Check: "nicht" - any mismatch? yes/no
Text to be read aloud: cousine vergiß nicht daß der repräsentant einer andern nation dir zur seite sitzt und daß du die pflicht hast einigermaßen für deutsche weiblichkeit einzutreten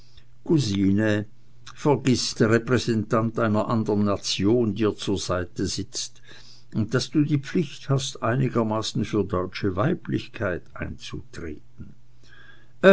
yes